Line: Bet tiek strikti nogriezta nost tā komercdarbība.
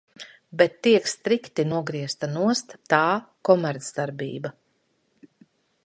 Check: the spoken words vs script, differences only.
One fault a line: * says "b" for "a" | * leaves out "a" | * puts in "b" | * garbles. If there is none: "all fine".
all fine